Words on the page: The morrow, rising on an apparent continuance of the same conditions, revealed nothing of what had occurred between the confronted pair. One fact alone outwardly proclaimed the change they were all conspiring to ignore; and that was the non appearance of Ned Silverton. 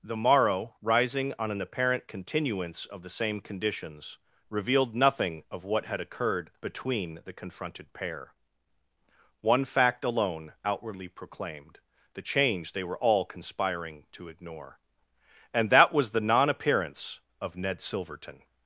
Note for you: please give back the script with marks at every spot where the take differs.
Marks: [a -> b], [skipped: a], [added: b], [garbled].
The morrow, rising on an apparent continuance of the same conditions, revealed nothing of what had occurred between the confronted pair. One fact alone outwardly proclaimed the change they were all conspiring to ignore; and that was the non appearance of Ned Silverton.